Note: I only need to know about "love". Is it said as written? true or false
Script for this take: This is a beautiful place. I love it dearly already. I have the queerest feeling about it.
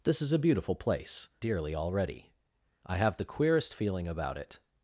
false